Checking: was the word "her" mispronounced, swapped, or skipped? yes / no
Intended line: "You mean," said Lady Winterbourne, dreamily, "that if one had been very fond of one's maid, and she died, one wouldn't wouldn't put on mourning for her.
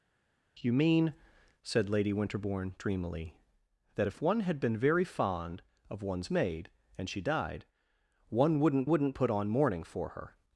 no